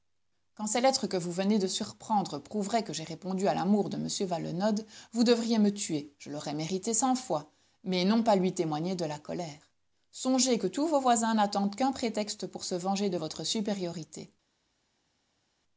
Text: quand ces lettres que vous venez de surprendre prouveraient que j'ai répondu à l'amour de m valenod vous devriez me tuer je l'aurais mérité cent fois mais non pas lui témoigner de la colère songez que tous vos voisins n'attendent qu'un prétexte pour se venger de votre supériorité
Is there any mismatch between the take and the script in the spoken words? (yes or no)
no